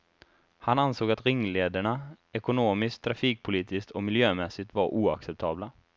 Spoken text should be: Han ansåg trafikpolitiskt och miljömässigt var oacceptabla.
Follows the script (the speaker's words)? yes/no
no